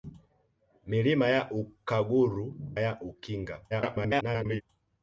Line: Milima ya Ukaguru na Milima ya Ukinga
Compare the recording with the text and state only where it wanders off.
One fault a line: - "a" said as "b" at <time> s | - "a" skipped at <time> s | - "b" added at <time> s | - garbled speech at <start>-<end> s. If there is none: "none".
- "na Milima" skipped at 2.5 s
- garbled speech at 3.7-4.6 s